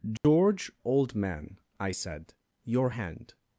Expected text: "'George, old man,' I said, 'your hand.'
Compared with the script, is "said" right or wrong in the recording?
right